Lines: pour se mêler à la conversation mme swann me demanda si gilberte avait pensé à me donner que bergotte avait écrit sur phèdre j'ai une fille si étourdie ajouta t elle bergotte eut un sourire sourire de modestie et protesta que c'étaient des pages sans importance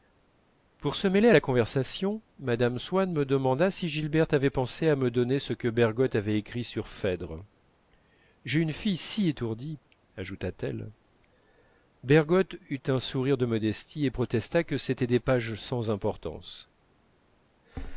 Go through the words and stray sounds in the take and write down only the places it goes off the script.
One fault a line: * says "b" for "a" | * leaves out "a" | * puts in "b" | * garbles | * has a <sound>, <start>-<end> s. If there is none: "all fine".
* puts in "ce"
* leaves out "sourire"